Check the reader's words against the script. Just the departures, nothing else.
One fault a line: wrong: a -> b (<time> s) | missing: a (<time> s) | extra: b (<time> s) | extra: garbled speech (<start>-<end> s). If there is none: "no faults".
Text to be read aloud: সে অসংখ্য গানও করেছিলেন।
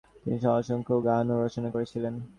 wrong: সে -> তিনি (0.1 s)
extra: রচনা (1.4 s)